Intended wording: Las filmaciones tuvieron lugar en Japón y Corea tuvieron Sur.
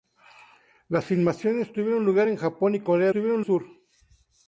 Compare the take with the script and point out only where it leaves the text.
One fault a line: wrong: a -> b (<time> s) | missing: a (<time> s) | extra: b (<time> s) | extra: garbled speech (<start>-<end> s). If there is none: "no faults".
no faults